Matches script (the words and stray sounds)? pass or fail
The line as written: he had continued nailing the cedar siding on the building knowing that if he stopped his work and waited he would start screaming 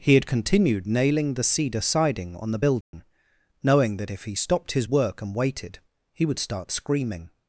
fail